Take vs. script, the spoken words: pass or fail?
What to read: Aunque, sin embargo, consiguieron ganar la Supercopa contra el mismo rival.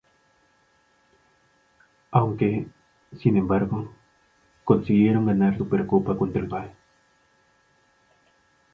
fail